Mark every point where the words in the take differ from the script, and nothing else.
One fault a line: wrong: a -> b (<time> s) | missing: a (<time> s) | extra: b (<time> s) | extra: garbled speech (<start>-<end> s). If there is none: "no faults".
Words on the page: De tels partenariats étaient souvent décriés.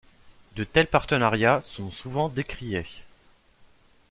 wrong: étaient -> sont (1.6 s)